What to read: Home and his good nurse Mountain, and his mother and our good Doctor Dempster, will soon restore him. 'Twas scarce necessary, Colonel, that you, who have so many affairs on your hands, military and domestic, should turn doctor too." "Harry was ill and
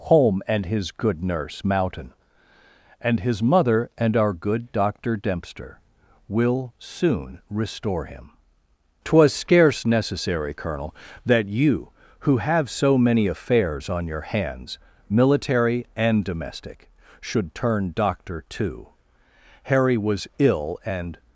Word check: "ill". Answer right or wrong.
right